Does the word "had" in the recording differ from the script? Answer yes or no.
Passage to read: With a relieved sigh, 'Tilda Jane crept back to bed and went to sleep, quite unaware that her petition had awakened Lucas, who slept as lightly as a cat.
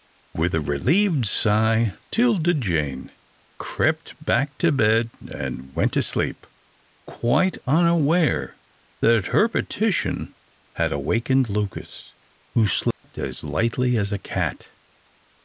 no